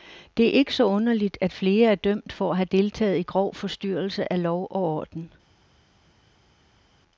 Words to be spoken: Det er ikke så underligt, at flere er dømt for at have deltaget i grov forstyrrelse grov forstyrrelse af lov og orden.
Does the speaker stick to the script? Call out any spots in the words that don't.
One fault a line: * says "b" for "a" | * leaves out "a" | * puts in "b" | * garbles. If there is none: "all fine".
* leaves out "grov forstyrrelse"